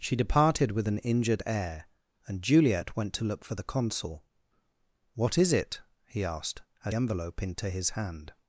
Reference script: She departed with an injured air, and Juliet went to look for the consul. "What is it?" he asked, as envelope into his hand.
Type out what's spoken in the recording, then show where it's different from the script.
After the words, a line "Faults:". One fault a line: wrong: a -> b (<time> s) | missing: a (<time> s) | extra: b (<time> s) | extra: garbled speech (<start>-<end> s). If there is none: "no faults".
She departed with an injured air, and Juliet went to look for the consul. "What is it?" he asked, as envelope into his hand.
Faults:
no faults